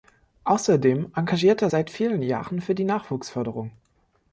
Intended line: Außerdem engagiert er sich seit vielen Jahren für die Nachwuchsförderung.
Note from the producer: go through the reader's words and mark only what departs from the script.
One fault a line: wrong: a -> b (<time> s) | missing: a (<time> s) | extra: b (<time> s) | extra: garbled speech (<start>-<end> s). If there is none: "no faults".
missing: sich (1.7 s)